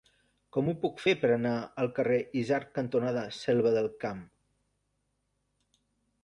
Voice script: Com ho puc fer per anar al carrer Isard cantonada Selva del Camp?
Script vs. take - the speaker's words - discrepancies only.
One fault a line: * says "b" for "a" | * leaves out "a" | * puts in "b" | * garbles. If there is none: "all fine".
all fine